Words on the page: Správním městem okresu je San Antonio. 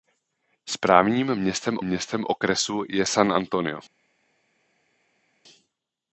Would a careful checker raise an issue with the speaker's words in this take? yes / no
yes